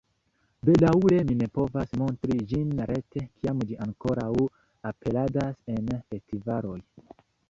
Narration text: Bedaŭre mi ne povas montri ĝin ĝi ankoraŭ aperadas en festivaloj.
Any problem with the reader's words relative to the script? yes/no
yes